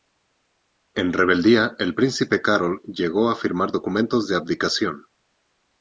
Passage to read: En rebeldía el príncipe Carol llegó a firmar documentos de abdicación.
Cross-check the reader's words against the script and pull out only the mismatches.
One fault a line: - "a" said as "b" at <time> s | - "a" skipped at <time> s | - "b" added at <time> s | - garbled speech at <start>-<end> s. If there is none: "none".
none